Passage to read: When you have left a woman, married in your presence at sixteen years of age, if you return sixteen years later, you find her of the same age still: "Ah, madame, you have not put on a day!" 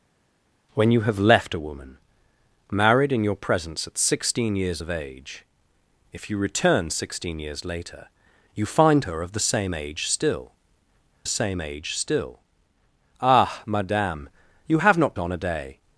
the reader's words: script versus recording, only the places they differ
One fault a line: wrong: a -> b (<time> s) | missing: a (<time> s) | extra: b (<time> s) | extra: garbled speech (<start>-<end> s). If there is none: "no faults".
extra: same age still (11.3 s)
missing: put (15.2 s)